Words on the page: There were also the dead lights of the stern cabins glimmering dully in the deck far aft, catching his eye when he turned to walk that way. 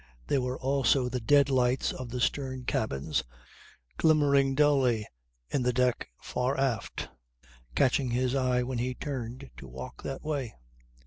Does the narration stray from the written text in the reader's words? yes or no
no